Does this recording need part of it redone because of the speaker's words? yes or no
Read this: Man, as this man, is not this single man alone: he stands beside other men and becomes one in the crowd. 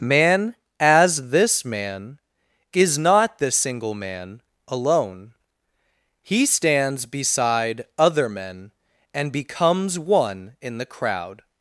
no